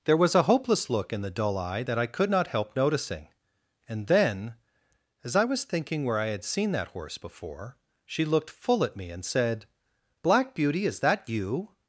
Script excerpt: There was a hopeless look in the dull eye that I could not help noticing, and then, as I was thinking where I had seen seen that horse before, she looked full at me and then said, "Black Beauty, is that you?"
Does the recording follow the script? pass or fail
fail